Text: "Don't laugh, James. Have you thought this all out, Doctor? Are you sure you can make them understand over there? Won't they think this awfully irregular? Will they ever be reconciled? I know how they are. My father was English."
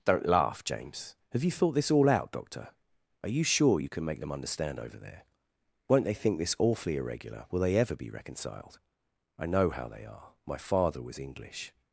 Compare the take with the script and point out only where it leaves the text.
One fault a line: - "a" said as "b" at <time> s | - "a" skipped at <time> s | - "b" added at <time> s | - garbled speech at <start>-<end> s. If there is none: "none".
none